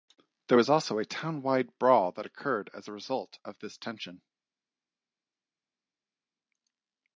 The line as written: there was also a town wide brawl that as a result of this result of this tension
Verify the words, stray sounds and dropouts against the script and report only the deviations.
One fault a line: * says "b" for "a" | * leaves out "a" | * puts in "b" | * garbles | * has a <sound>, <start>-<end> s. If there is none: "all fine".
* puts in "occurred"
* leaves out "result of this"